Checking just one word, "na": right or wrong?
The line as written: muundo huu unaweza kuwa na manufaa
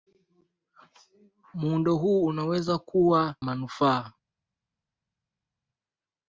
wrong